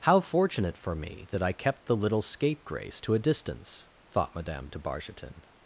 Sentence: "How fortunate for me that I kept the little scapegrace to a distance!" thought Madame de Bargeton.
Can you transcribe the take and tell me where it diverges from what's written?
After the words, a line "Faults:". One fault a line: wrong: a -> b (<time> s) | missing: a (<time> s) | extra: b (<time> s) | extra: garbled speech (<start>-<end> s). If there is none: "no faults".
"How fortunate for me that I kept the little scapegrace to a distance!" thought Madame de Bargeton.
Faults:
no faults